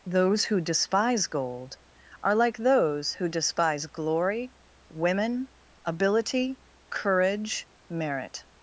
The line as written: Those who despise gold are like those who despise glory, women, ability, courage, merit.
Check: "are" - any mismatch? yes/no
no